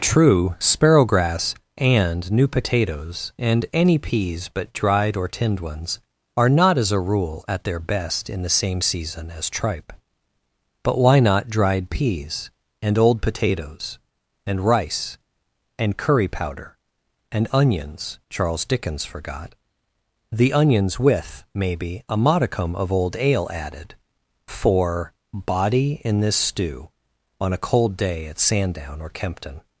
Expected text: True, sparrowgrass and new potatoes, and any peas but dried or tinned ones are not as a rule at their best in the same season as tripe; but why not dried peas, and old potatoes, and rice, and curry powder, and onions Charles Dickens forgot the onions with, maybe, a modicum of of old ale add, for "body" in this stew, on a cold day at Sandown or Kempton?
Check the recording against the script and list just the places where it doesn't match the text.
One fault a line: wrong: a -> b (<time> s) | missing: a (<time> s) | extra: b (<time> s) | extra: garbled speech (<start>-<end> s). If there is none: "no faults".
missing: of (22.9 s)
wrong: add -> added (23.5 s)